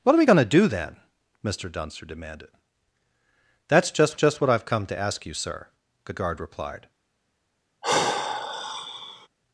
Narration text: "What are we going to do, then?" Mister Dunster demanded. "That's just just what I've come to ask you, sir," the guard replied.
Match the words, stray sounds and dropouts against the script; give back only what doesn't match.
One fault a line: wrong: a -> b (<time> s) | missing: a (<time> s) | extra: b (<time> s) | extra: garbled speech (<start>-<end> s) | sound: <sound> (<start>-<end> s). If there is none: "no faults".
sound: sigh (7.8-9.3 s)